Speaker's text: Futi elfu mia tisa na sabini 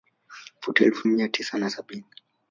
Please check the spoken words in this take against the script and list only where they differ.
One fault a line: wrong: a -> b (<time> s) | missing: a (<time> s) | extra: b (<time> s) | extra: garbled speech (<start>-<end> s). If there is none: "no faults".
no faults